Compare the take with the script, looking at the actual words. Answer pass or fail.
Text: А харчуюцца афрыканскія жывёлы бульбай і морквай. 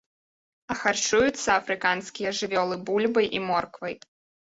pass